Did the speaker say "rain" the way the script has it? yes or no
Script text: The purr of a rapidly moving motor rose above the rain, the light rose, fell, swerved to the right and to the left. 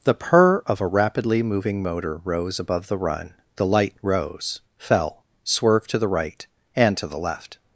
no